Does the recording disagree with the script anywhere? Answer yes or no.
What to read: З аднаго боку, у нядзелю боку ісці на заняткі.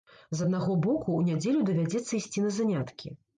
yes